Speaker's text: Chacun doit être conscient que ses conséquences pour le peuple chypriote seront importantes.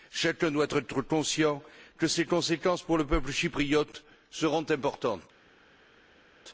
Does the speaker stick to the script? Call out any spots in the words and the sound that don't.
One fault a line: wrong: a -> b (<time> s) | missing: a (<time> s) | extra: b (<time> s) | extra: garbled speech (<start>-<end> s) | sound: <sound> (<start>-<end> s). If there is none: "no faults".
no faults